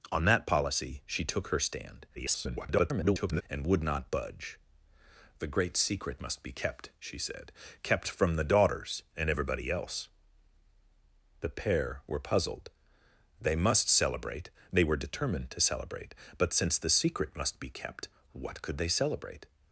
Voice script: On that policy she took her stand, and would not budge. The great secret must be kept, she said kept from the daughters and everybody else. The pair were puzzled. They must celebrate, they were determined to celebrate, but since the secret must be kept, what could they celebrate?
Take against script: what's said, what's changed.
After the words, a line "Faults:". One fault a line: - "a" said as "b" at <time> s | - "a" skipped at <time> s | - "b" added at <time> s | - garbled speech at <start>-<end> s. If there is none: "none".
On that policy she took her stand, [garbled] and would not budge. The great secret must be kept, she said kept from the daughters and everybody else. The pair were puzzled. They must celebrate, they were determined to celebrate, but since the secret must be kept, what could they celebrate?
Faults:
- garbled speech at 2.1-3.4 s